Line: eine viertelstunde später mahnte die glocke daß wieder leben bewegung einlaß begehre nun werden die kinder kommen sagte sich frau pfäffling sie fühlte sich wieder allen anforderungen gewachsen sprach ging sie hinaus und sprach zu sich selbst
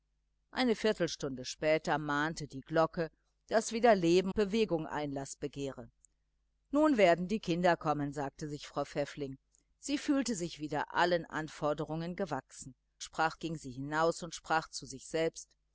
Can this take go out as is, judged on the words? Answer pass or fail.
pass